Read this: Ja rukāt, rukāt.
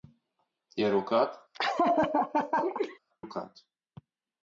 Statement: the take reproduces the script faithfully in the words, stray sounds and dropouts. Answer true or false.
false